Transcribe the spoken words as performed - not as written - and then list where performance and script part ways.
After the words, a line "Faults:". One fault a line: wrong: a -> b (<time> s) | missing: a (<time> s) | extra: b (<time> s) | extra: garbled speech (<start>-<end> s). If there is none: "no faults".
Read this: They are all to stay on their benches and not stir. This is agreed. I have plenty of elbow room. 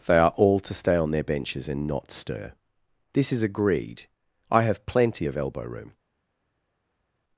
They are all to stay on their benches and not stir. This is agreed. I have plenty of elbow room.
Faults:
no faults